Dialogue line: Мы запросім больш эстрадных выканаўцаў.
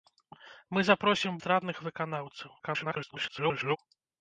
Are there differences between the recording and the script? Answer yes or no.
yes